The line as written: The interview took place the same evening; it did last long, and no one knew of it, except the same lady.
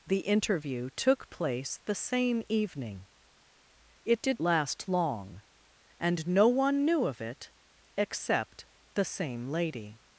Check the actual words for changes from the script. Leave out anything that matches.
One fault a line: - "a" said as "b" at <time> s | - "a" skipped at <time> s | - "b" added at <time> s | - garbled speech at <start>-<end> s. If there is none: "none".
none